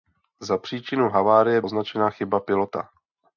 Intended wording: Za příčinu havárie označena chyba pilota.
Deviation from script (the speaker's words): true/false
false